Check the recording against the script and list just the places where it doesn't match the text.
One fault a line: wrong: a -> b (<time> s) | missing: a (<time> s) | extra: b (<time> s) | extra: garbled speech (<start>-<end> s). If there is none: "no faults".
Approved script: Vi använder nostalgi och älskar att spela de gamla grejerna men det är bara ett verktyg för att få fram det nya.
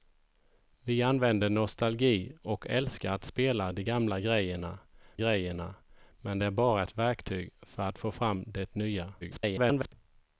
extra: grejerna (5.2 s)
extra: garbled speech (9.2-9.9 s)